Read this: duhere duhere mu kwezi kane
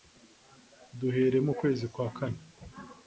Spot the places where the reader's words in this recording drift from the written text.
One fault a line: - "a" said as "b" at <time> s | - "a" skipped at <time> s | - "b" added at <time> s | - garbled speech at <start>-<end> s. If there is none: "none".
- "duhere" skipped at 1.4 s
- "kwa" added at 1.9 s